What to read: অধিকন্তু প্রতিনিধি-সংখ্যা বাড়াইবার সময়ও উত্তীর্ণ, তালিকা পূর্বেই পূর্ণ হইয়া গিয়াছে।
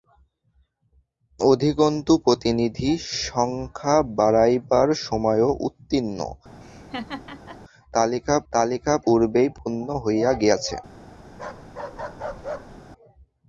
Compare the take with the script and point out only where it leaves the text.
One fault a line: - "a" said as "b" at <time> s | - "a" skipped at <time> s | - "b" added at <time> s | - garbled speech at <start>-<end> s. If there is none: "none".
- "তালিকা" added at 8.5 s